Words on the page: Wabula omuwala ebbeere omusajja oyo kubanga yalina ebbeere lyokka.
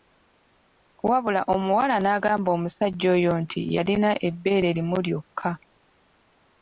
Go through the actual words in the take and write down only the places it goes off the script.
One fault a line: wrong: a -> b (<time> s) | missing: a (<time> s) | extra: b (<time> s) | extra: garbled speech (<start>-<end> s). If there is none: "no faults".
wrong: ebbeere -> n'agamba (2.0 s)
wrong: kubanga -> nti (3.4 s)
extra: limu (4.7 s)